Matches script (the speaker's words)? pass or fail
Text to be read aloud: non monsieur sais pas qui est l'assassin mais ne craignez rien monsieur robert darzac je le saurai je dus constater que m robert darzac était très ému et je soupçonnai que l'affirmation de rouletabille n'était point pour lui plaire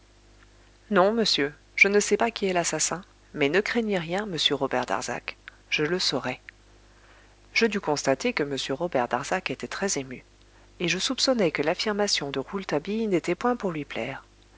fail